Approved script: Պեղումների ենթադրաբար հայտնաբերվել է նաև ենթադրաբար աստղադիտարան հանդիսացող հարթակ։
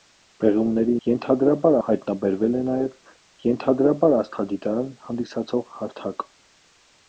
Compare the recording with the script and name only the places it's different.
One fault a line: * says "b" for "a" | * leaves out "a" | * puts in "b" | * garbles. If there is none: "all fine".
all fine